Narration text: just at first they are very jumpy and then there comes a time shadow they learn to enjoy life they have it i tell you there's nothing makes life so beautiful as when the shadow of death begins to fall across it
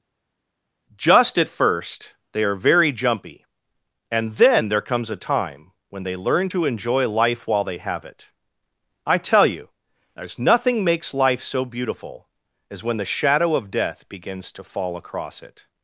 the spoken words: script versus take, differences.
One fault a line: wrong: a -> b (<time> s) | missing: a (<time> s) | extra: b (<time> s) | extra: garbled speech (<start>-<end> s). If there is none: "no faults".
wrong: shadow -> when (5.9 s)
extra: while (7.5 s)